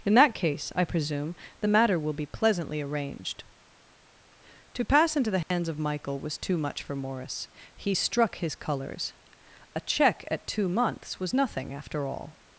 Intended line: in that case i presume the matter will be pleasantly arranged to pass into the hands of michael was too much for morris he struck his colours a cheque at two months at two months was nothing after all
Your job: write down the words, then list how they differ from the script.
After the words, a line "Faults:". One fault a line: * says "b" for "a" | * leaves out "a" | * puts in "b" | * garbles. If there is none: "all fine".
in that case i presume the matter will be pleasantly arranged to pass into the hands of michael was too much for morris he struck his colours a cheque at two months was nothing after all
Faults:
* leaves out "at two months"